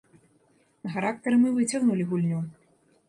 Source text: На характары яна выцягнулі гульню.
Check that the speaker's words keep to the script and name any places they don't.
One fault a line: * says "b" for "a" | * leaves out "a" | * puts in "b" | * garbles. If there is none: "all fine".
* says "мы" for "яна"